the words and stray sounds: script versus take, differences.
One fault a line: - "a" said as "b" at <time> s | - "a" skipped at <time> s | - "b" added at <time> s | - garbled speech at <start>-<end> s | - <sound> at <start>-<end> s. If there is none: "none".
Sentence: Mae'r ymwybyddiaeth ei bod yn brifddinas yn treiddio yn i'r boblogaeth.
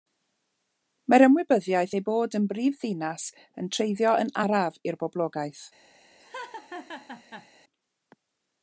- "araf" added at 4.4 s
- laugh at 6.2-7.5 s